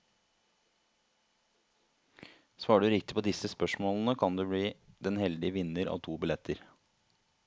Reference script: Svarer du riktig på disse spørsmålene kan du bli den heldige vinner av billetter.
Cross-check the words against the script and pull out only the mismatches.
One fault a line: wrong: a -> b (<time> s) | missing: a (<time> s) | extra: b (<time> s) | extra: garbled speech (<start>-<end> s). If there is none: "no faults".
extra: to (6.0 s)